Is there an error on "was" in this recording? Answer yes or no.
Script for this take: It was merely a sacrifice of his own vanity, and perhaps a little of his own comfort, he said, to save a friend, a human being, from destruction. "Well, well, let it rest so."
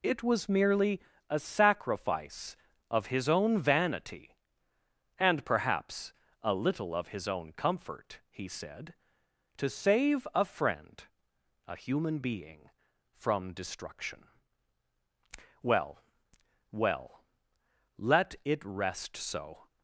no